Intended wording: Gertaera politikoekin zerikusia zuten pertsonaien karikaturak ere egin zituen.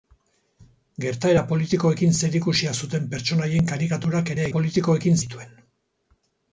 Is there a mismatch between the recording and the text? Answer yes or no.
yes